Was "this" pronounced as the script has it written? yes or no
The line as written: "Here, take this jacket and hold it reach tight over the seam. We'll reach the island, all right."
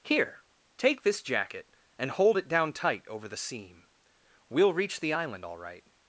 yes